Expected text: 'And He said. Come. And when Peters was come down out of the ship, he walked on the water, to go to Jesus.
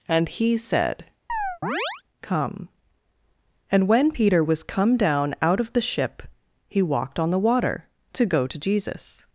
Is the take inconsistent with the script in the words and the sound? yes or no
yes